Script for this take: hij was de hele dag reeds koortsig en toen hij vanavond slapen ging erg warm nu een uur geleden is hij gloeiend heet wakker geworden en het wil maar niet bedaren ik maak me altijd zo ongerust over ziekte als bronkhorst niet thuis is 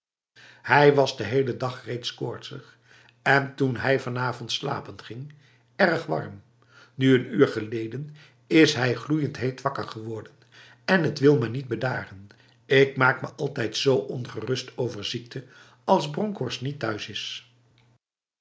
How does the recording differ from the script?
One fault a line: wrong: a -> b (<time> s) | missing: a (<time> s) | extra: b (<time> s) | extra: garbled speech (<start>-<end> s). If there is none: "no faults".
no faults